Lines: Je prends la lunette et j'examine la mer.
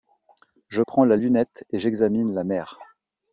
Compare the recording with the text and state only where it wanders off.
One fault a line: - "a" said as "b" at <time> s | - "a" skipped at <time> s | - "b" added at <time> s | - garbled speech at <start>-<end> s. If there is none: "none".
none